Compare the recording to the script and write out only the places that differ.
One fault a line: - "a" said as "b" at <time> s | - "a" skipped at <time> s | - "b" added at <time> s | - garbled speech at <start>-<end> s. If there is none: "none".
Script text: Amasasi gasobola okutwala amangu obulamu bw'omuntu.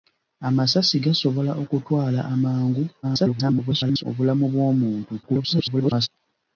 - garbled speech at 3.0-4.0 s
- garbled speech at 5.2-6.1 s